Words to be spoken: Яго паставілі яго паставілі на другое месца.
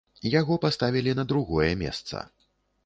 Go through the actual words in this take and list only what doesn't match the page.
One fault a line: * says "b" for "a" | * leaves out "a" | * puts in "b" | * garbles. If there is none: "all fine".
* leaves out "яго паставілі"